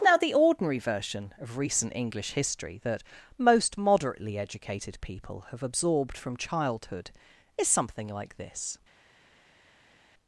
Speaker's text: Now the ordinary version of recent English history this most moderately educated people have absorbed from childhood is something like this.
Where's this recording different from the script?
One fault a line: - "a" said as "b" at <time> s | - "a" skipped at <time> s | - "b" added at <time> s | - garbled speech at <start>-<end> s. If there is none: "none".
- "this" said as "that" at 2.8 s